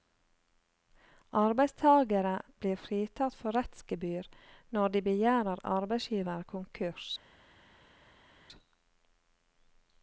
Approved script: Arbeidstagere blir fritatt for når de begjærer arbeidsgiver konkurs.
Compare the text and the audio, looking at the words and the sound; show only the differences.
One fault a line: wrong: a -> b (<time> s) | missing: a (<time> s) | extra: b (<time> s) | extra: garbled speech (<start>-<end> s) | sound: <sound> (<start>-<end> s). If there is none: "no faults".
extra: rettsgebyr (3.6 s)